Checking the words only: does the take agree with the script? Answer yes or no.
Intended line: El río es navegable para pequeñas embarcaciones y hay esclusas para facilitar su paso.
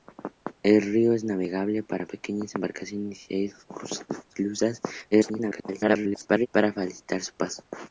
no